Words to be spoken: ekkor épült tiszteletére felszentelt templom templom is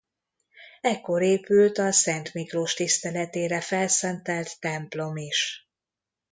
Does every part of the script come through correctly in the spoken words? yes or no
no